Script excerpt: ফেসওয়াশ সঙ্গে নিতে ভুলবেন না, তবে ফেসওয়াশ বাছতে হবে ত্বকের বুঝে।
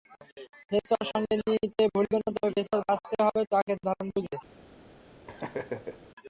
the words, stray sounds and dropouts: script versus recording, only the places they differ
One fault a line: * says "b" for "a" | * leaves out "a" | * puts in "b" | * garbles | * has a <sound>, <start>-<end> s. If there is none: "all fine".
* puts in "ধরন"
* has a laugh, 5.3-6.1 s